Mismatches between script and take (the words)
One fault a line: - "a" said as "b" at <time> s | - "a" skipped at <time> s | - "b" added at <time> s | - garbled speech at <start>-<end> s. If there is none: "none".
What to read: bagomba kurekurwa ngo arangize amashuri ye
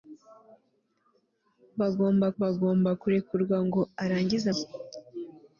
- "bagomba" added at 2.4 s
- "amashuri" skipped at 4.5 s